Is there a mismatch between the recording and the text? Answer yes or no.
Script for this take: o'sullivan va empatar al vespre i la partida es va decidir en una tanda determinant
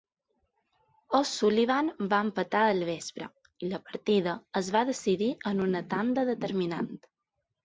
no